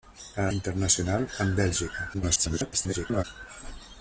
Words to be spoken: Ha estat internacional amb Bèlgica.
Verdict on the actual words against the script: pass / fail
fail